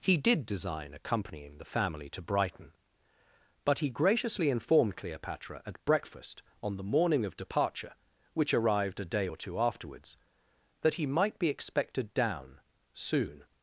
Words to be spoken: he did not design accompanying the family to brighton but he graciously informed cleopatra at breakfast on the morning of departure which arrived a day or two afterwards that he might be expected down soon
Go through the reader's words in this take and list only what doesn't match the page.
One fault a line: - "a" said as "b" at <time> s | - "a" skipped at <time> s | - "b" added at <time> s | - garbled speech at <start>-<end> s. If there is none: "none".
- "not" skipped at 0.5 s